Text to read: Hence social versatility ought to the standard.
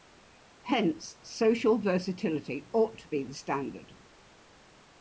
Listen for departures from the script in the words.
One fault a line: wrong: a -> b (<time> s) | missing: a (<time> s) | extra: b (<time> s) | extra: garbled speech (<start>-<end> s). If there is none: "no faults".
extra: be (3.1 s)